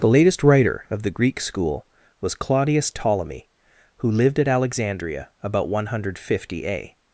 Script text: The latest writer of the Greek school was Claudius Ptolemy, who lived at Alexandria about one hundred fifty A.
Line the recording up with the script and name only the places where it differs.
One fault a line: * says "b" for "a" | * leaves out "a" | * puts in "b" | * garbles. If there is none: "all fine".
all fine